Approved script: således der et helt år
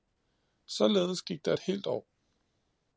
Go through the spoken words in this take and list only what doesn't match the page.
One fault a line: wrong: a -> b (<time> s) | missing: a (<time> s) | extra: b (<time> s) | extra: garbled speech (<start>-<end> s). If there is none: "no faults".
extra: gik (1.2 s)